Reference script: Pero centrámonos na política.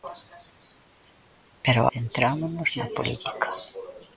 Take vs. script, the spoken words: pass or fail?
pass